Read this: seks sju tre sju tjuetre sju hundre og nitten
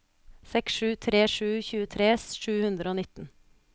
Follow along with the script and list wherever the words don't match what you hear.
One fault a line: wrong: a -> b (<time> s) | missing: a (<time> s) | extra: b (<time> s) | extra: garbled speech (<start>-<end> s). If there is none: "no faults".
no faults